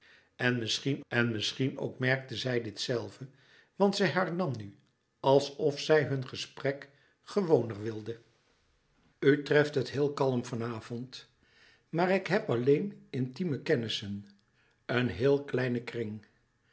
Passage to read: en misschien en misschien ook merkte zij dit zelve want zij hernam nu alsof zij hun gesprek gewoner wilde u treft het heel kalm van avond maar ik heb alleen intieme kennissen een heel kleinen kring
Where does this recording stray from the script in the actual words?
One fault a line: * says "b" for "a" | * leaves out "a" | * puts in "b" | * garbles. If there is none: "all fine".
all fine